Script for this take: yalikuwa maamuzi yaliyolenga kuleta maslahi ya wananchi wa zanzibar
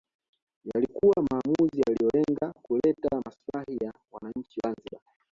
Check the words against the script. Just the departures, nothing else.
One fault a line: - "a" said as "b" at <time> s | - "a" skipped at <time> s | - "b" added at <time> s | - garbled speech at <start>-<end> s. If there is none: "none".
- "wa" skipped at 4.6 s